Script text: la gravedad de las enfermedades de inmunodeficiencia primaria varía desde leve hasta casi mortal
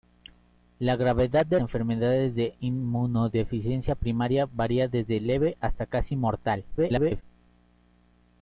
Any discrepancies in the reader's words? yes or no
yes